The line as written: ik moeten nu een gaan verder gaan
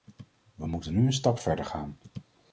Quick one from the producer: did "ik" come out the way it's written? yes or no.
no